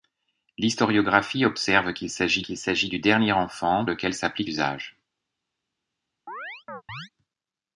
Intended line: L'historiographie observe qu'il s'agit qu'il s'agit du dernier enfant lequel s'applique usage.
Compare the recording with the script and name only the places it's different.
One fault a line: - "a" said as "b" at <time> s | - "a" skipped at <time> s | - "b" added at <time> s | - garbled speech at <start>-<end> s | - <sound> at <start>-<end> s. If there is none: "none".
- chirp at 6.3-7.1 s